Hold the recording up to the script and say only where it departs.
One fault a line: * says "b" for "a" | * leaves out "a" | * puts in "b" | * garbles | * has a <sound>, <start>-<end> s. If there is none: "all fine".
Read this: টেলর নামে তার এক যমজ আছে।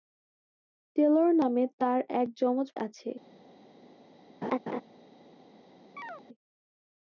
* has a laugh, 4.4-4.8 s
* has a chirp, 6.0-6.2 s